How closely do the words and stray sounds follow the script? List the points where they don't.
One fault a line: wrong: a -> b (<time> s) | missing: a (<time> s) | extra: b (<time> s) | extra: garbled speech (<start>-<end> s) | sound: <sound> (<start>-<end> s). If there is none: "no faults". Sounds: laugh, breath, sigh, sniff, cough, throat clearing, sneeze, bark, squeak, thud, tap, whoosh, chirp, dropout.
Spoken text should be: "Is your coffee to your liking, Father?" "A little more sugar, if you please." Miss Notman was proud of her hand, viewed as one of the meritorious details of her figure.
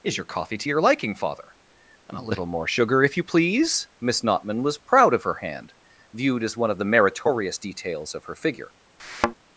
extra: and (2.1 s)
sound: thud (9.0-9.3 s)